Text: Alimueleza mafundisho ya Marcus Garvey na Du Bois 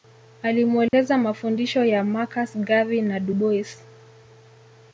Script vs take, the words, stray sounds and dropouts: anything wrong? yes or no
yes